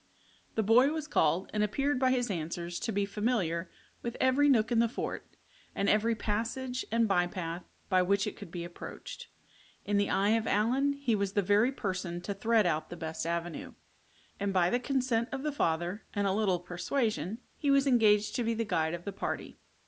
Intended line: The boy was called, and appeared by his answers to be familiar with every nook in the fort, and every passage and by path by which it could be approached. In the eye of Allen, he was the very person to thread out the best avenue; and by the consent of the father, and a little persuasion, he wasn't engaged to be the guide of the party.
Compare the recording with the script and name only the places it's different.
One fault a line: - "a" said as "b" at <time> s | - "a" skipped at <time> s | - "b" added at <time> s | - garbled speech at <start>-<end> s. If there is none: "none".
- "wasn't" said as "was" at 17.7 s